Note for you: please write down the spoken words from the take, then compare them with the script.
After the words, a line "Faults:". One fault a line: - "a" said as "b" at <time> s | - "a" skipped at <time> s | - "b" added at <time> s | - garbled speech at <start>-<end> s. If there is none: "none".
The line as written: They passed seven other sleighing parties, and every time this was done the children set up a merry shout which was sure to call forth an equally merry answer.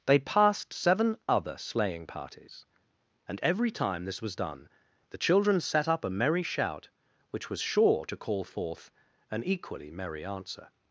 They passed seven other sleighing parties, and every time this was done the children set up a merry shout which was sure to call forth an equally merry answer.
Faults:
none